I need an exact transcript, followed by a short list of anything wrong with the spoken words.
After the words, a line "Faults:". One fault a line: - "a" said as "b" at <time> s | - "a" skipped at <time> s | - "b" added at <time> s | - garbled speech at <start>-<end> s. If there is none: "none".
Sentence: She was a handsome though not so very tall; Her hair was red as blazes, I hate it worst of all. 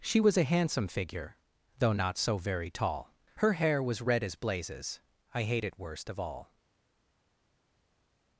She was a handsome figure though not so very tall; Her hair was red as blazes, I hate it worst of all.
Faults:
- "figure" added at 0.8 s